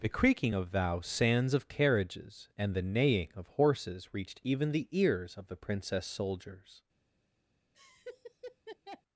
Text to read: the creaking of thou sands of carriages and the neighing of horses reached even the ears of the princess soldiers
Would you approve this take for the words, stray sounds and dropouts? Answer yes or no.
no